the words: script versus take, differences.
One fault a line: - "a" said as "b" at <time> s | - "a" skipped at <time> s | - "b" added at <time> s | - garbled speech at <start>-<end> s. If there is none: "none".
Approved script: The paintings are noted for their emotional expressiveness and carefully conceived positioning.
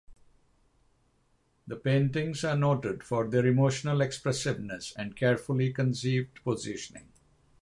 none